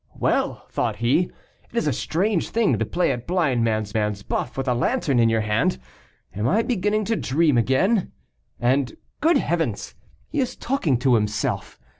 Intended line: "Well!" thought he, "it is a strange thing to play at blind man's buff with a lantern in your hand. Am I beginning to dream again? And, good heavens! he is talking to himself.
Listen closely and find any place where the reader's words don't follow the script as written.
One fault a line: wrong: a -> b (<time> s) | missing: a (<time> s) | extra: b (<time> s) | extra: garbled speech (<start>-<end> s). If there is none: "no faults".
extra: man's (3.9 s)